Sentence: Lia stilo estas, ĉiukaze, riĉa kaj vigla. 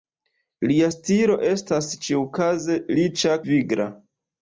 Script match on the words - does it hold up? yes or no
no